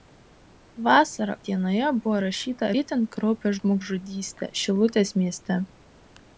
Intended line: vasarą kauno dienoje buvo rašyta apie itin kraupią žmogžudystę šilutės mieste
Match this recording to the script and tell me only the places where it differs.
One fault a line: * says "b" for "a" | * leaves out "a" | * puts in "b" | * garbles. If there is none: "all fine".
* leaves out "kauno"
* leaves out "apie"